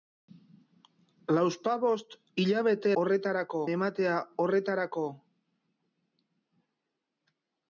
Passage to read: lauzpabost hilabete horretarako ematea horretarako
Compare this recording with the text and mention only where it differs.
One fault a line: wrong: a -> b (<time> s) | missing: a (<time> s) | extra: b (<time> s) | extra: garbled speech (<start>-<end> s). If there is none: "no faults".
no faults